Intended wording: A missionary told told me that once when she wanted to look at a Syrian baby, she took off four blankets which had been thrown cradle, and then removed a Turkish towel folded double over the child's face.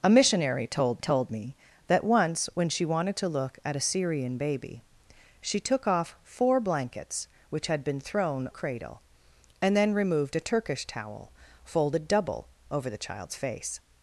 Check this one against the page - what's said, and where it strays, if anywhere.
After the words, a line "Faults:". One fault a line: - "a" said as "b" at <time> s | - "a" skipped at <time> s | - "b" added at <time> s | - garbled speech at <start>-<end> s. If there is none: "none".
A missionary told told me that once when she wanted to look at a Syrian baby, she took off four blankets which had been thrown cradle, and then removed a Turkish towel folded double over the child's face.
Faults:
none